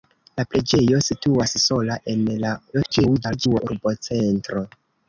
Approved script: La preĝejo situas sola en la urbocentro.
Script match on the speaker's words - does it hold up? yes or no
no